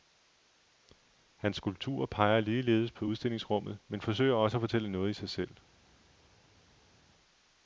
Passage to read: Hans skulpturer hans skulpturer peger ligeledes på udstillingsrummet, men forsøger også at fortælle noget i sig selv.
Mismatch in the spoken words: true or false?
true